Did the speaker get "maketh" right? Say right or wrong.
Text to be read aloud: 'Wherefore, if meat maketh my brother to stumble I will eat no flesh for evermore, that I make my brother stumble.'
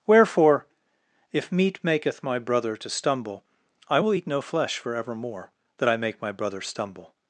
right